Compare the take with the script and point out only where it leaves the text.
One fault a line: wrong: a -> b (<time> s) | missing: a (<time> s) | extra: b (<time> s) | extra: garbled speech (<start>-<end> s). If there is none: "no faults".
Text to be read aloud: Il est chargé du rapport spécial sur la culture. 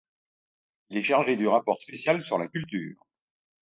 no faults